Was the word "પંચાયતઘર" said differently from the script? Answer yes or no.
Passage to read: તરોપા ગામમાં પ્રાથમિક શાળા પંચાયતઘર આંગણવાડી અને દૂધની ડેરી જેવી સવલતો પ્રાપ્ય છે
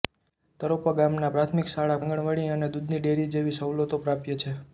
yes